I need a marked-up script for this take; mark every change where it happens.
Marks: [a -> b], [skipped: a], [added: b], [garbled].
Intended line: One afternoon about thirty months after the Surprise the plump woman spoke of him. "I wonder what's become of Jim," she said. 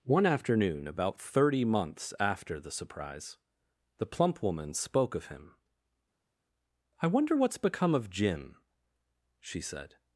One afternoon about thirty months after the Surprise the plump woman spoke of him. "I wonder what's become of Jim," she said.